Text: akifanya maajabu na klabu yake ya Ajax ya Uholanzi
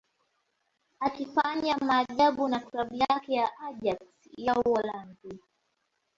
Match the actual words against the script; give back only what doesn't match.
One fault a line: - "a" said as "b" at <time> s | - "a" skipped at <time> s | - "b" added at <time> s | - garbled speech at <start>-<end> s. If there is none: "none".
none